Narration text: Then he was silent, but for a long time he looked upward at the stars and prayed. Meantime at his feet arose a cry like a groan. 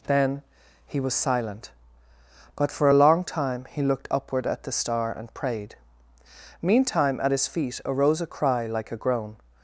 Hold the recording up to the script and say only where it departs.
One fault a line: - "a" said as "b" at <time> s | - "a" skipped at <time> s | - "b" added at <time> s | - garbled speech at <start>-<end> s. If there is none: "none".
- "stars" said as "star" at 4.7 s